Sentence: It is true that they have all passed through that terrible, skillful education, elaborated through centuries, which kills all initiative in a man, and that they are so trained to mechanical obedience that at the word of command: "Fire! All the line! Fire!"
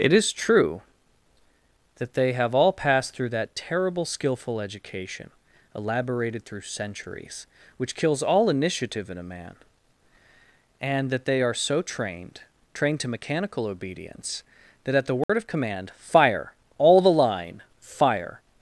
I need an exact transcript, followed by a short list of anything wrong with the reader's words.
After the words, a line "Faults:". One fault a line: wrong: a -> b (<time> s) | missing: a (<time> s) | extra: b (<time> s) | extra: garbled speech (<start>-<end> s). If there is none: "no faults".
It is true that they have all passed through that terrible, skillful education, elaborated through centuries, which kills all initiative in a man, and that they are so trained trained to mechanical obedience that at the word of command: "Fire! All the line! Fire!"
Faults:
extra: trained (12.7 s)